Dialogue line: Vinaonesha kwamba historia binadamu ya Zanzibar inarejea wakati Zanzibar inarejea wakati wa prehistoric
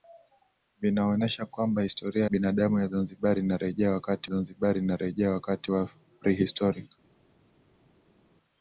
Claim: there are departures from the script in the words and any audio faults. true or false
false